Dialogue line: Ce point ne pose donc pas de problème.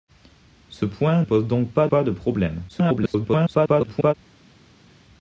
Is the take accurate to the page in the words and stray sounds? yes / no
no